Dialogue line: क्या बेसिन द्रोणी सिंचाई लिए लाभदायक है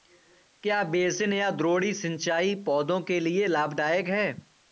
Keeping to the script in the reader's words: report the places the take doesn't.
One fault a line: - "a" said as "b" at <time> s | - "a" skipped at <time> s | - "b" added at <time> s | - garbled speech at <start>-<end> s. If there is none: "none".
- "या" added at 1.3 s
- "पौधों के" added at 2.6 s